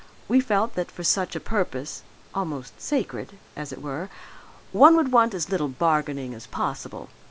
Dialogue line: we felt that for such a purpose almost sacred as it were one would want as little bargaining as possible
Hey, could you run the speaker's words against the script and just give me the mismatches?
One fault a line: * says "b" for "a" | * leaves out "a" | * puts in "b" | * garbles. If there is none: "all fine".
all fine